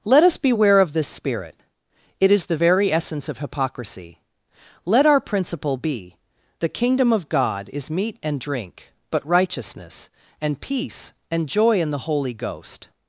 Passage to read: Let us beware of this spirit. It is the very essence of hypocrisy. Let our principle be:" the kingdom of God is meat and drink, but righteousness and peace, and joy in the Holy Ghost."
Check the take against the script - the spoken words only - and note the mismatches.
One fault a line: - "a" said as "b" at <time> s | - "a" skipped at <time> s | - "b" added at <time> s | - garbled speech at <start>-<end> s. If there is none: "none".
none